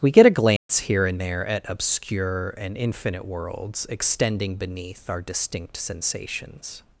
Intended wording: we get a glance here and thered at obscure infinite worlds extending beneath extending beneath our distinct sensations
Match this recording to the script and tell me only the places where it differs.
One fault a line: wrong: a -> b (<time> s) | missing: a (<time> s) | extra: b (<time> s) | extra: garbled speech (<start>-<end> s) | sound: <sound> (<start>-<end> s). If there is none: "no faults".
sound: dropout (0.6-0.7 s)
wrong: thered -> there (1.2 s)
extra: and (2.6 s)
missing: extending beneath (5.1 s)